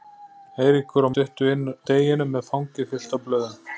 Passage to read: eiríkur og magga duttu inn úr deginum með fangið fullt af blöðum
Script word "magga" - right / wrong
wrong